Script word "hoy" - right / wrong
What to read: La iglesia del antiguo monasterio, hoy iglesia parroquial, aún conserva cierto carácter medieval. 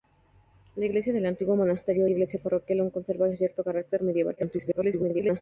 wrong